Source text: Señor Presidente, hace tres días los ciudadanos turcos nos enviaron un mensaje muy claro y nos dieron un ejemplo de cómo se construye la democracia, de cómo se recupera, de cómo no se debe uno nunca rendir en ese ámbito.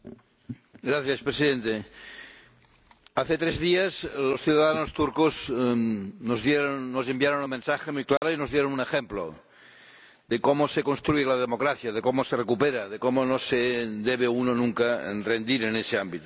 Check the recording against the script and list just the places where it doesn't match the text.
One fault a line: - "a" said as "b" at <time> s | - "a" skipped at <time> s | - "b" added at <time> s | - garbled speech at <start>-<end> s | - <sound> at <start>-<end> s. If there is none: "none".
- dropout at 8.2-8.2 s